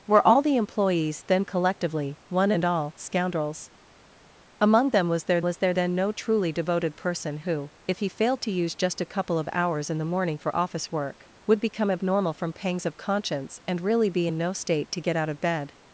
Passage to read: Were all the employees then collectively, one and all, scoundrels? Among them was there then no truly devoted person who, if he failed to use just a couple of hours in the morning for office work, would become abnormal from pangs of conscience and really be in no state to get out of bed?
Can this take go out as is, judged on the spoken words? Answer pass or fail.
fail